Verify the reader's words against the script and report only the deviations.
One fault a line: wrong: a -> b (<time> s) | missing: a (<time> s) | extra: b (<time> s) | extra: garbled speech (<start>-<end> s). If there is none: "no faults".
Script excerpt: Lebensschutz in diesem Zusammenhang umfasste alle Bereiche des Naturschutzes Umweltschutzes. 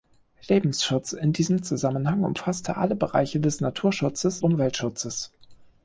no faults